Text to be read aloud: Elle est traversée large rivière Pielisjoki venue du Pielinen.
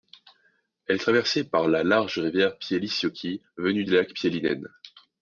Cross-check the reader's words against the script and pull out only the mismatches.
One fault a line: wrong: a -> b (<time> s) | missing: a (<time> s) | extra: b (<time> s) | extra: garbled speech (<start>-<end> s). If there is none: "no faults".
extra: par la (1.4 s)
extra: lac (3.9 s)